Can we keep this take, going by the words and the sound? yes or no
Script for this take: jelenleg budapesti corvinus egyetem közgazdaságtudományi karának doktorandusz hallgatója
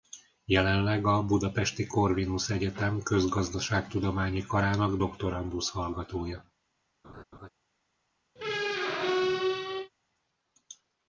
no